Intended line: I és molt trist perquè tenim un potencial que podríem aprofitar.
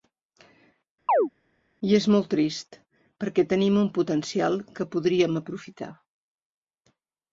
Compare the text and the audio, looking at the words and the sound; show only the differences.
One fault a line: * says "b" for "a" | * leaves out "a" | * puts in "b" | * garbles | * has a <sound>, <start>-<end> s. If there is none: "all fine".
* has a chirp, 1.1-1.3 s